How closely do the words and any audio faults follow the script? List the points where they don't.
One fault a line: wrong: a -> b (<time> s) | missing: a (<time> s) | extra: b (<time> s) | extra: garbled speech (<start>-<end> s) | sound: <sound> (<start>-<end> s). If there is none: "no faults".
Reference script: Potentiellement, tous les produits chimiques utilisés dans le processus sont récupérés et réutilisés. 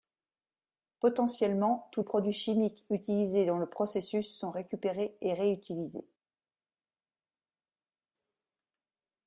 missing: les (2.0 s)